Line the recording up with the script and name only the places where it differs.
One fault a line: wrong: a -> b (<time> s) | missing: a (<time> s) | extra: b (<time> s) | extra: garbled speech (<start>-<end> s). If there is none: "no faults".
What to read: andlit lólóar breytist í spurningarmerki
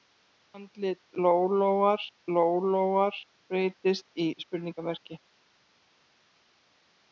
extra: lólóar (2.4 s)